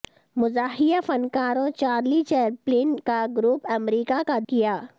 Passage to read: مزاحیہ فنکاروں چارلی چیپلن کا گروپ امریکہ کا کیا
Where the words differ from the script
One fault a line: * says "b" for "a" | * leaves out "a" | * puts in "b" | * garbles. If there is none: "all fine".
all fine